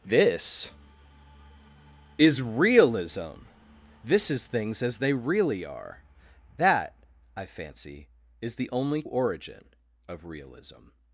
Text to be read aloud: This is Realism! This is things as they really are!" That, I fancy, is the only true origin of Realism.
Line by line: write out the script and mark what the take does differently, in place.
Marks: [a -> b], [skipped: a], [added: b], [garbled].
This is Realism! This is things as they really are!" That, I fancy, is the only [skipped: true] origin of Realism.